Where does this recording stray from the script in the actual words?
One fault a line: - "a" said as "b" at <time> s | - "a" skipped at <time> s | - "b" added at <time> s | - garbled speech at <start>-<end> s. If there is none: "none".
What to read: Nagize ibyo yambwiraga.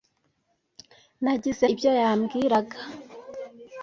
none